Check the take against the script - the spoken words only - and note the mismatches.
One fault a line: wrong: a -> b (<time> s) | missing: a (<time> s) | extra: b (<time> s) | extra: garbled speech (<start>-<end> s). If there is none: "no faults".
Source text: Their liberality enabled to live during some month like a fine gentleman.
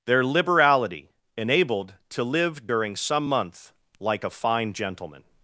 no faults